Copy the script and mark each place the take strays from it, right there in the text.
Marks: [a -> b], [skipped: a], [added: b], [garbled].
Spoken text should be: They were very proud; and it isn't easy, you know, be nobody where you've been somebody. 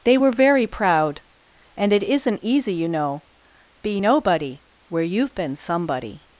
They were very proud; and it isn't easy, you know, be nobody where you've been somebody.